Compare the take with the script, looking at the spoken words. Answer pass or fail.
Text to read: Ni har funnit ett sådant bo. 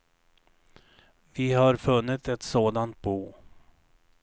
fail